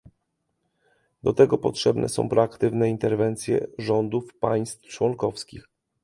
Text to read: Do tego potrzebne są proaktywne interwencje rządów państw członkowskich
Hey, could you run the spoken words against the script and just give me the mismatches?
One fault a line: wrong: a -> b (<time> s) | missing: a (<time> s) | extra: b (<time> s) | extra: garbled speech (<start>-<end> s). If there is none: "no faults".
no faults